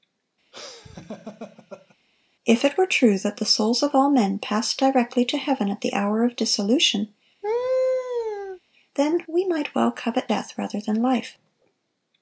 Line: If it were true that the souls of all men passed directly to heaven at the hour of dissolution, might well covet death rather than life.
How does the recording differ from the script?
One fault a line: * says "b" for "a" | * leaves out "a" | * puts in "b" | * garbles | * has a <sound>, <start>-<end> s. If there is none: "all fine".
* has a laugh, 0.5-2.0 s
* has a laugh, 7.4-8.6 s
* puts in "then we"